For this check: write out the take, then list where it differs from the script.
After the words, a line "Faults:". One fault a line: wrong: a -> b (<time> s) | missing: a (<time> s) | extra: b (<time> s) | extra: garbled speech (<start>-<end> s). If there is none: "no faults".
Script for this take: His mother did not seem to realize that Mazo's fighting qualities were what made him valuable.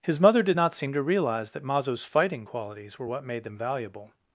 His mother did not seem to realize that Mazo's fighting qualities were what made them valuable.
Faults:
wrong: him -> them (3.4 s)